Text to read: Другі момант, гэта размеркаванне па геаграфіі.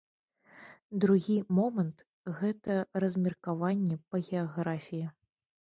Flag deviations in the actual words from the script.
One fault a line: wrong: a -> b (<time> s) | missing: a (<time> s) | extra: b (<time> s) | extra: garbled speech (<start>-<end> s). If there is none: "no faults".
no faults